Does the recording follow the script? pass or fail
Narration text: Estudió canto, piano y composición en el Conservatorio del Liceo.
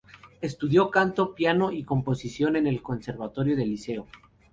pass